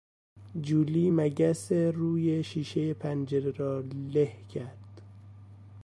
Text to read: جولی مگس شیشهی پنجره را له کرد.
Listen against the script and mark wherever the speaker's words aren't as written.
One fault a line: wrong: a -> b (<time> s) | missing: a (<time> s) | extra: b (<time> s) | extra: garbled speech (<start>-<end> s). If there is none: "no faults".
extra: روی (1.7 s)